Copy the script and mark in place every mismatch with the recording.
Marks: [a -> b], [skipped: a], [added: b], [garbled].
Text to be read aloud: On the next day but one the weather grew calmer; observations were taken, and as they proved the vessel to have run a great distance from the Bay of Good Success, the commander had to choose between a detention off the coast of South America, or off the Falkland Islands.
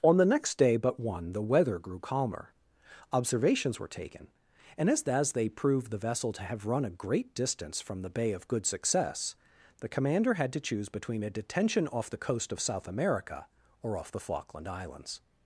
On the next day but one the weather grew calmer; observations were taken, and as [added: as] they proved the vessel to have run a great distance from the Bay of Good Success, the commander had to choose between a detention off the coast of South America, or off the Falkland Islands.